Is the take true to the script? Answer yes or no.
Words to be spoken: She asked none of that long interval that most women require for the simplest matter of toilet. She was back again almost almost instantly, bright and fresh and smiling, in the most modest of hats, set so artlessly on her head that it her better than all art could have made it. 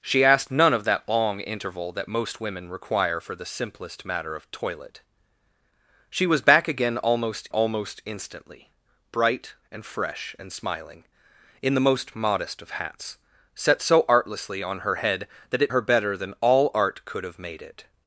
yes